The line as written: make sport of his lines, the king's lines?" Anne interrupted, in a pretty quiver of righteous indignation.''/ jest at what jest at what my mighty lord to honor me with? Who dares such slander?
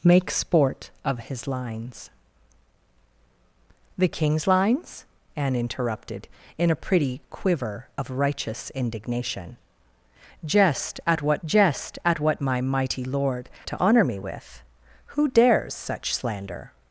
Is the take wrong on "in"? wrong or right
right